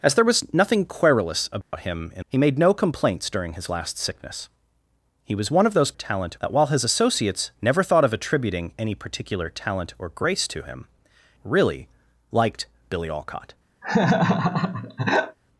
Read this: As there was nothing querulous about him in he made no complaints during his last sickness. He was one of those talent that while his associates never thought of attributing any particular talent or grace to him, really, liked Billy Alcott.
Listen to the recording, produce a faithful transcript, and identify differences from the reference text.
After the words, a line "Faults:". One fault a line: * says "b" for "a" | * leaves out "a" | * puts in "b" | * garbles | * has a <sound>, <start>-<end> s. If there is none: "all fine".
As there was nothing querulous about him in he made no complaints during his last sickness. He was one of those talent that while his associates never thought of attributing any particular talent or grace to him, really, liked Billy Alcott.
Faults:
* has a dropout, 1.6-1.7 s
* has a laugh, 13.8-15.4 s